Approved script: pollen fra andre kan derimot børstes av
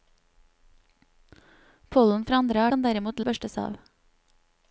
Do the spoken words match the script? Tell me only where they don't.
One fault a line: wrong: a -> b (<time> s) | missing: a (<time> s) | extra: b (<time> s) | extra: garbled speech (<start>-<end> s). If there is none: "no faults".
no faults